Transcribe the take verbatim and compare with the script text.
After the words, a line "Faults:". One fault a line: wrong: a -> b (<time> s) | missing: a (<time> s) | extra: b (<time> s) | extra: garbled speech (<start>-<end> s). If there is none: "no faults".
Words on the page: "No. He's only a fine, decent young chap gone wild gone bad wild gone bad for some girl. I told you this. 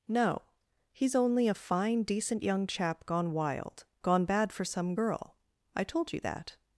"No. He's only a fine, decent young chap gone wild gone bad for some girl. I told you that.
Faults:
missing: wild gone bad (4.5 s)
wrong: this -> that (6.2 s)